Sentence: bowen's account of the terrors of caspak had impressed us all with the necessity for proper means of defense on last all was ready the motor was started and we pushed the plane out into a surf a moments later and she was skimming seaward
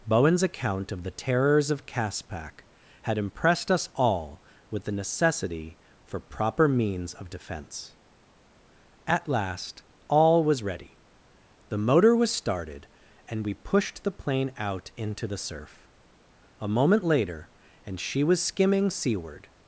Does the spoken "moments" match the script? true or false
false